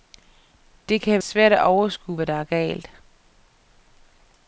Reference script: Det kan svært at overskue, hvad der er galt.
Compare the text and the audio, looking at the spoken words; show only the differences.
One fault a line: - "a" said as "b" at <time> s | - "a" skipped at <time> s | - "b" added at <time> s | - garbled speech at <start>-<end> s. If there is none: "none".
none